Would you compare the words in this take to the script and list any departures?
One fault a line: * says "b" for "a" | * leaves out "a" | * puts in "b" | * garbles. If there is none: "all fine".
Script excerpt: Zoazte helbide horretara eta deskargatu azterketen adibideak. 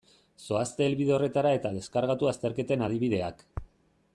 all fine